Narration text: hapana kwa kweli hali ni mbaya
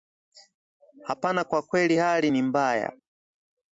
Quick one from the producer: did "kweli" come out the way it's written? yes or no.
yes